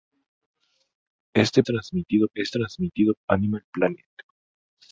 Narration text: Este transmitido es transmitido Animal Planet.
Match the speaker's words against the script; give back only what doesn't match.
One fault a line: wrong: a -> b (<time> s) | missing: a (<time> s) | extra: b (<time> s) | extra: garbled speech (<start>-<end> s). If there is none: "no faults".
no faults